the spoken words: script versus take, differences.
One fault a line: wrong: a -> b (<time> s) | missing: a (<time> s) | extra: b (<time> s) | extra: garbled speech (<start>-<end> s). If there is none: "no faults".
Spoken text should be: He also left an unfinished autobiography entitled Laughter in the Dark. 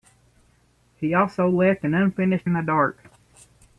missing: autobiography entitled Laughter (2.5 s)